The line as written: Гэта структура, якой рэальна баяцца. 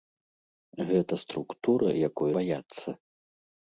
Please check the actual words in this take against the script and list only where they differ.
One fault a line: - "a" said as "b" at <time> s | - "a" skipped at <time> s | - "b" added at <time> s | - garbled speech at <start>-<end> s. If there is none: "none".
- "рэальна" skipped at 2.3 s